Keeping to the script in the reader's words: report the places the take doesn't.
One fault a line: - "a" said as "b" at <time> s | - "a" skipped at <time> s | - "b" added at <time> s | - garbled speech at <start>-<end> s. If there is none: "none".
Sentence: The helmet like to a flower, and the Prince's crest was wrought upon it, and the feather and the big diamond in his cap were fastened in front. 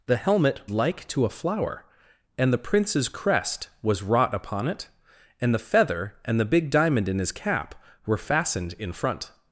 none